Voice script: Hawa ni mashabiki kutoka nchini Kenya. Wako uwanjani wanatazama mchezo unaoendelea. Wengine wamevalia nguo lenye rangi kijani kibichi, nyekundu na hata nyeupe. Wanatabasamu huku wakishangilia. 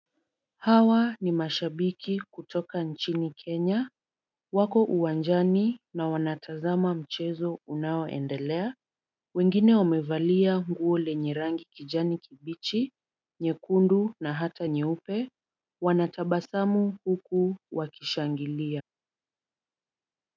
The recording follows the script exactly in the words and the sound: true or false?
false